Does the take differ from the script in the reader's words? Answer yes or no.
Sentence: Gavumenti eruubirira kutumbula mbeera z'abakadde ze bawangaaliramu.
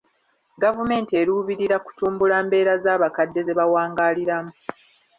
no